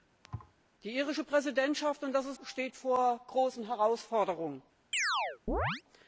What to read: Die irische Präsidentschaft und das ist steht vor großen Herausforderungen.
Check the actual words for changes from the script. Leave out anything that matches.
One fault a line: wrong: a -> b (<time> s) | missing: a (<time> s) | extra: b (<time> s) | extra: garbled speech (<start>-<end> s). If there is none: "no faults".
no faults